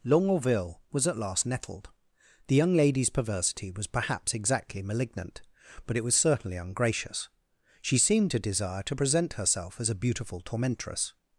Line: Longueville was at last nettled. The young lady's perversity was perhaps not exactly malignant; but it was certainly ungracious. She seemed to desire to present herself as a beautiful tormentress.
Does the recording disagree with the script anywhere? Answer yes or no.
yes